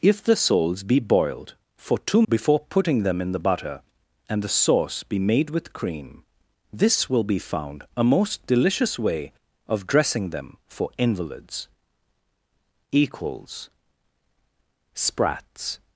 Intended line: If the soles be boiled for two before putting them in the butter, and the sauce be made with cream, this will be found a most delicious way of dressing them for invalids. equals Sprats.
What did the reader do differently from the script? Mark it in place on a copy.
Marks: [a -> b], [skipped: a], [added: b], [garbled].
If the soles be boiled for two before putting them in the butter, and the sauce be made with cream, this will be found a most delicious way of dressing them for invalids. equals Sprats.